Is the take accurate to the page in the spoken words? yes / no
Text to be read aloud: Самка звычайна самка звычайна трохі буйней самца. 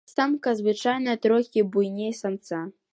no